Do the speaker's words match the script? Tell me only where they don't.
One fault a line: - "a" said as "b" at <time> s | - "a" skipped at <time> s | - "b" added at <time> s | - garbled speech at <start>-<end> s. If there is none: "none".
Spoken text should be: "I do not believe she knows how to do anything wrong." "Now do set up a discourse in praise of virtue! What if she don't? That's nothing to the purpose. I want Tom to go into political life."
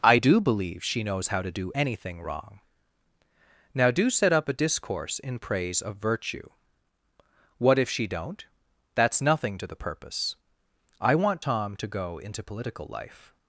- "not" skipped at 0.4 s